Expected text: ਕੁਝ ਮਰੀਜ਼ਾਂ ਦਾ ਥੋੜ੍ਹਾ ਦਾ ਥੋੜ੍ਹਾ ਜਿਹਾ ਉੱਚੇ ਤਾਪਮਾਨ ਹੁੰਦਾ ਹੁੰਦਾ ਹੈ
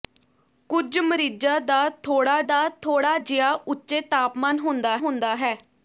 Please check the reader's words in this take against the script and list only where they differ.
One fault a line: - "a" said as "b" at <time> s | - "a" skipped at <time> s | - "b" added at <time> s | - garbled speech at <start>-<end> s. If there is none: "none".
none